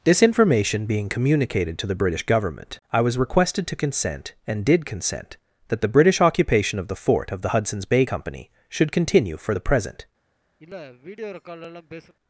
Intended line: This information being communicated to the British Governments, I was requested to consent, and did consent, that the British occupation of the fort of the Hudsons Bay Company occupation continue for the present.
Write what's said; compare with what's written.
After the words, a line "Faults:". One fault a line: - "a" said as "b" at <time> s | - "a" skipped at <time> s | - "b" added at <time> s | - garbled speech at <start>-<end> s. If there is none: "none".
This information being communicated to the British Government, I was requested to consent, and did consent, that the British occupation of the fort of the Hudsons Bay Company should continue for the present.
Faults:
- "Governments" said as "Government" at 2.2 s
- "occupation" said as "should" at 8.7 s